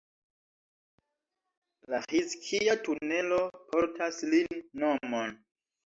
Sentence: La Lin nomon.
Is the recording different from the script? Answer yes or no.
yes